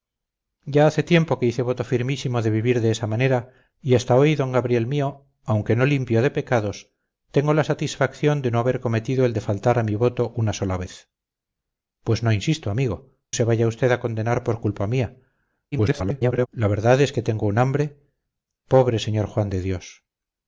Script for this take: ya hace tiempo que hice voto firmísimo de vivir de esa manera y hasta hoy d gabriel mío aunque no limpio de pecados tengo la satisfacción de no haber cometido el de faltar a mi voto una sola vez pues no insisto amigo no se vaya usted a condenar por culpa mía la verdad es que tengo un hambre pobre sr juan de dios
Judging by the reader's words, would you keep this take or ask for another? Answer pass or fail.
fail